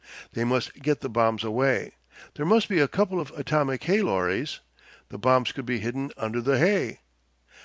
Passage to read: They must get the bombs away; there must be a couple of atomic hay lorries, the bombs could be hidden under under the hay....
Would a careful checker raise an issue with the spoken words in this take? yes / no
yes